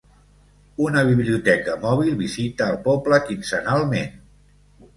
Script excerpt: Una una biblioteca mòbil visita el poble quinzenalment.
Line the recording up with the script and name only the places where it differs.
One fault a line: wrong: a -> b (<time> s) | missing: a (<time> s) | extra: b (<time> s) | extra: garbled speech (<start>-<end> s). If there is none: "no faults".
missing: una (1.0 s)